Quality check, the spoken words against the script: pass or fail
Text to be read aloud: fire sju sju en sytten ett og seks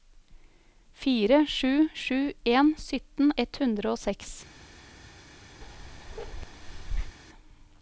fail